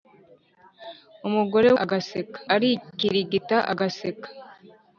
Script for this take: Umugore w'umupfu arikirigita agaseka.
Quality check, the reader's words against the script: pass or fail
fail